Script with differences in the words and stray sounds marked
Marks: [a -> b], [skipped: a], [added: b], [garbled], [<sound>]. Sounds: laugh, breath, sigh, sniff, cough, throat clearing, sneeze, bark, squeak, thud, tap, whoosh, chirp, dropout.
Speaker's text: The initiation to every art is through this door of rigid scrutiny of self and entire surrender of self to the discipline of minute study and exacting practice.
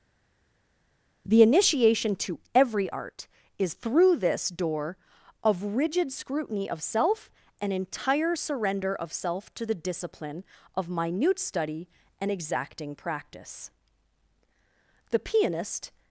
The initiation to every art is through this door of rigid scrutiny of self and entire surrender of self to the discipline of minute study and exacting practice. [added: The pianist]